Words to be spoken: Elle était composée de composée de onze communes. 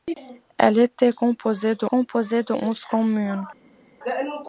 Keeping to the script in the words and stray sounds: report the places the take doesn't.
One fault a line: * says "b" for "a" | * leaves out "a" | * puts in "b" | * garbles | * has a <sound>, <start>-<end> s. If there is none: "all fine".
all fine